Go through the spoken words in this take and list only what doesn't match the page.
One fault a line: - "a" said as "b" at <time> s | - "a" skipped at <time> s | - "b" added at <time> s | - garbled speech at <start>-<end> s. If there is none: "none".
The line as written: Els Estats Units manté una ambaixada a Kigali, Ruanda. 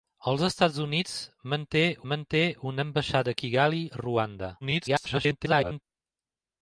- "manté" added at 2.1 s
- garbled speech at 4.6-5.8 s